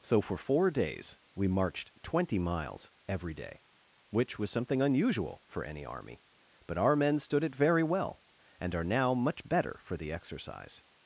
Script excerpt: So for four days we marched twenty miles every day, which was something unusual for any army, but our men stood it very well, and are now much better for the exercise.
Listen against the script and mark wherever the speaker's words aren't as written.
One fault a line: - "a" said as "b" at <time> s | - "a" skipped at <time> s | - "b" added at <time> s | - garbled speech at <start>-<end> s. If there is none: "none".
none